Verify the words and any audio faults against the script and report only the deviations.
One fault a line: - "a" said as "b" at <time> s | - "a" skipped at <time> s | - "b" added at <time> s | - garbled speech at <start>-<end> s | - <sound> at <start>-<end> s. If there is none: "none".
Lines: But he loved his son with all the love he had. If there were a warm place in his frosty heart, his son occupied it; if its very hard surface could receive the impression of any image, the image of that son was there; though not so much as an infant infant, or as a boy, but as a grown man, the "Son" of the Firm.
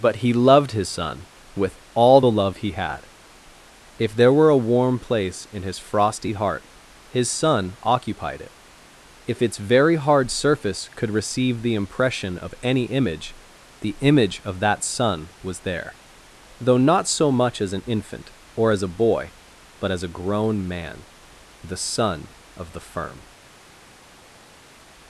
- "infant" skipped at 18.3 s